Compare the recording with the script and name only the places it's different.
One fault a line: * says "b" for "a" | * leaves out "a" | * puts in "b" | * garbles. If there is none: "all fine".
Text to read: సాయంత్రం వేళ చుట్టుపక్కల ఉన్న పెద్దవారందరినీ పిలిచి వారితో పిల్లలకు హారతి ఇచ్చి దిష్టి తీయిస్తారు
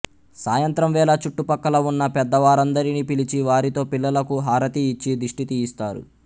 all fine